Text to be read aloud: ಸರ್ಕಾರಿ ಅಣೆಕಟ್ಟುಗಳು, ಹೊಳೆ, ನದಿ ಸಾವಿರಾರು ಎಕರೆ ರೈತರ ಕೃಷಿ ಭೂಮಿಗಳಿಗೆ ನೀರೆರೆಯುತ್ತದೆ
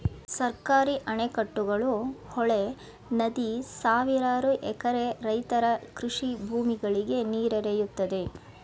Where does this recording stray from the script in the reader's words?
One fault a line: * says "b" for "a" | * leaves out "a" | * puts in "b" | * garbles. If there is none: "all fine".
all fine